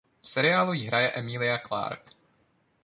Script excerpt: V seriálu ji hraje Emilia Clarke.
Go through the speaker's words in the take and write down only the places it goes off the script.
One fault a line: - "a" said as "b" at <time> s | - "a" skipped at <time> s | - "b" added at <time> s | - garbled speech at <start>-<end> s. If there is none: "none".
none